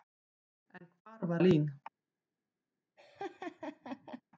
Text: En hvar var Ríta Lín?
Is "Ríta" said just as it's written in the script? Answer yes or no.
no